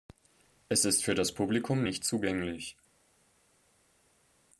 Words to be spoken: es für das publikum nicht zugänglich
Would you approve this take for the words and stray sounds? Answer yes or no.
no